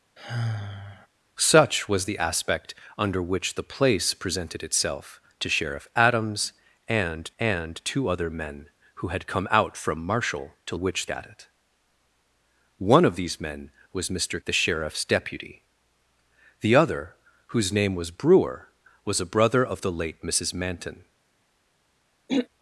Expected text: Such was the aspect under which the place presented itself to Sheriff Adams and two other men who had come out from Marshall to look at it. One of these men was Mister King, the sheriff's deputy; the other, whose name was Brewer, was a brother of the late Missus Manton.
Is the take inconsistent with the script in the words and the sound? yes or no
yes